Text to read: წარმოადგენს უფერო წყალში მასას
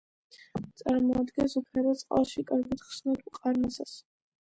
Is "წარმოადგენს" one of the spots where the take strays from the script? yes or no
no